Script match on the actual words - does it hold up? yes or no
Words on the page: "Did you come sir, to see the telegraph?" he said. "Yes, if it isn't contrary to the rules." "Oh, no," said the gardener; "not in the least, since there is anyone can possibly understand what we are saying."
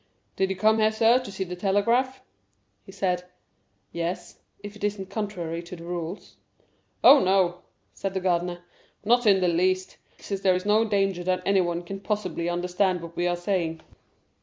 no